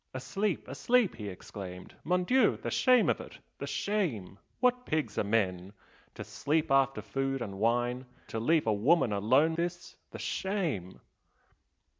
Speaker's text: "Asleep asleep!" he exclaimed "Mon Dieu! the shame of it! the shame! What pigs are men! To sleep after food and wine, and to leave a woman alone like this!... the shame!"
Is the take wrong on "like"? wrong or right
wrong